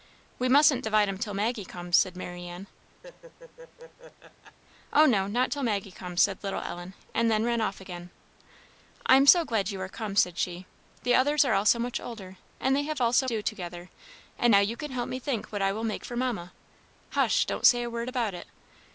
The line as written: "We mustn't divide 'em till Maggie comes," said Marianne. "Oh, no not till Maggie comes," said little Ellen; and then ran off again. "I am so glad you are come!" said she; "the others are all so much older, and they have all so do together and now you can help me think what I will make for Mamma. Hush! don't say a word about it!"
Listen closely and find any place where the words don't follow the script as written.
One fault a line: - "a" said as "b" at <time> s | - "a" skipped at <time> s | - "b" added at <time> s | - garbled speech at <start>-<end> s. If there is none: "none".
none